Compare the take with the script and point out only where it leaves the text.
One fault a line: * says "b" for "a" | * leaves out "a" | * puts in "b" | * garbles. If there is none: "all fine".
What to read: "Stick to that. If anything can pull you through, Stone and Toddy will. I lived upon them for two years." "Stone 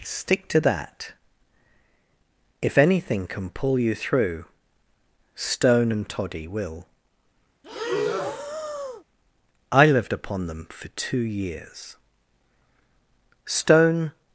all fine